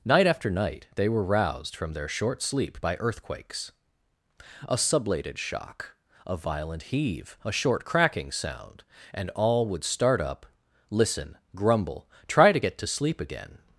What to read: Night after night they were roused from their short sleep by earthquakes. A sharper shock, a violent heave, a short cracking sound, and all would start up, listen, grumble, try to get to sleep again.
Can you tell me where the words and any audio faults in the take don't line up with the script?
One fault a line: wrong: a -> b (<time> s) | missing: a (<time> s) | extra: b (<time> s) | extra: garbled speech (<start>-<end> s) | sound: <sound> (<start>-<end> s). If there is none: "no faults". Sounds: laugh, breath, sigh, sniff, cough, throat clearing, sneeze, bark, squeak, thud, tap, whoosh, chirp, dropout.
wrong: sharper -> sublated (4.7 s)